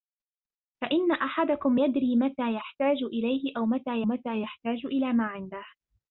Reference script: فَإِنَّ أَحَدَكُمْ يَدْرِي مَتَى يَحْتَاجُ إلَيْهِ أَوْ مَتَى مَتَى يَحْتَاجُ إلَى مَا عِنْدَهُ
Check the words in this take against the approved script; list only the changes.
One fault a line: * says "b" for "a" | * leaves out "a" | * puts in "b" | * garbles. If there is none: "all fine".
all fine